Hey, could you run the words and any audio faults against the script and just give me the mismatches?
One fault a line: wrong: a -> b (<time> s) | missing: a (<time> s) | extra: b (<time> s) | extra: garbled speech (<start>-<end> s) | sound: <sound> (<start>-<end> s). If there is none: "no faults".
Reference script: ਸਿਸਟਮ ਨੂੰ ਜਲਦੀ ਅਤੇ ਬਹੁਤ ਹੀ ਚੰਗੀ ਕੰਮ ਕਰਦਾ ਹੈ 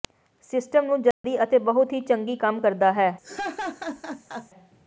sound: dropout (1.1-1.2 s)
sound: laugh (3.2-4.5 s)